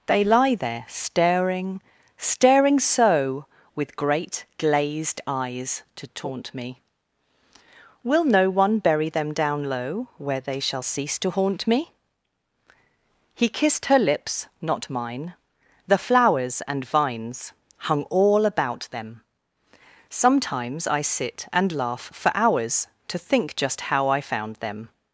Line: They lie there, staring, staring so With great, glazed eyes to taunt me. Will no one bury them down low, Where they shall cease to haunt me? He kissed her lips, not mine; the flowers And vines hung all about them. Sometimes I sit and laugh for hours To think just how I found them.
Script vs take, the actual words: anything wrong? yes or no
no